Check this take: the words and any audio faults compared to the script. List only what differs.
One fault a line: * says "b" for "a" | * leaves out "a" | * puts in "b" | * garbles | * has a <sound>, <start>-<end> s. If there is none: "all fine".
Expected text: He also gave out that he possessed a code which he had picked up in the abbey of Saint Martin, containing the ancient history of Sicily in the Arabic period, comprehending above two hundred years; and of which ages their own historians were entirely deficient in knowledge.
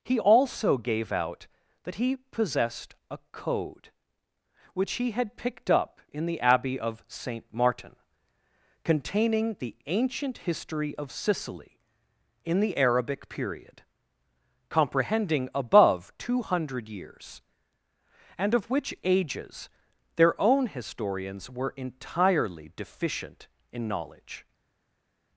all fine